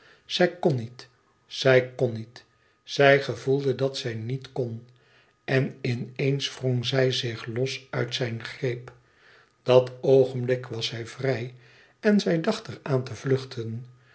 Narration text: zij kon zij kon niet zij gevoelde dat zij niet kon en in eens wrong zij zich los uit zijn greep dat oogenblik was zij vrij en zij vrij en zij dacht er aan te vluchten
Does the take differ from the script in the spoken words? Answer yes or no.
yes